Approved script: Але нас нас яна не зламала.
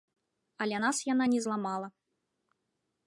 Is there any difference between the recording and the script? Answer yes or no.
yes